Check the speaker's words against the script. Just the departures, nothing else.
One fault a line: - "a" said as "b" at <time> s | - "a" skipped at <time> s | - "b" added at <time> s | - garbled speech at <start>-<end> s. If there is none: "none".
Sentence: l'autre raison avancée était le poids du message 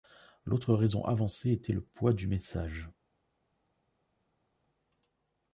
none